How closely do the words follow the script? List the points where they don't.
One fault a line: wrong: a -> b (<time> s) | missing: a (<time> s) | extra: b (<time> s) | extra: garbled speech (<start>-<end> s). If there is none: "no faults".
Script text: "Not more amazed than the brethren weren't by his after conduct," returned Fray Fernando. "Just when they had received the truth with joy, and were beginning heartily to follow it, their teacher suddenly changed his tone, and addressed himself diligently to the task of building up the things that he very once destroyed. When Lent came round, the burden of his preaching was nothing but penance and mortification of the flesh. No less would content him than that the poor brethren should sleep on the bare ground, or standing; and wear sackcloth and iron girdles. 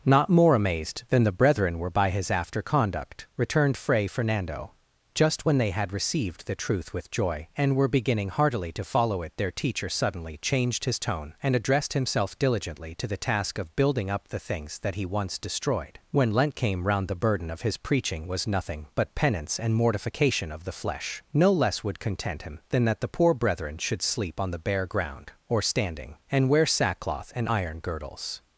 wrong: weren't -> were (1.8 s)
missing: very (15.1 s)